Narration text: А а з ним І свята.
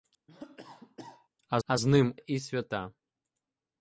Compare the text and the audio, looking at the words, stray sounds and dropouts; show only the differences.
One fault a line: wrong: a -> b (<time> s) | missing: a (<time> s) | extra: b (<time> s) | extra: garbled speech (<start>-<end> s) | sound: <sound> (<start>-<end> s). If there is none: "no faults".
sound: cough (0.3-1.3 s)